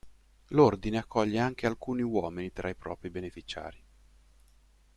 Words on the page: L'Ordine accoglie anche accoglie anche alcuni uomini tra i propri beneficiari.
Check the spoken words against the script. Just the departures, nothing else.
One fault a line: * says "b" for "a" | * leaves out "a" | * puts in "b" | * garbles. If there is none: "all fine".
* leaves out "accoglie anche"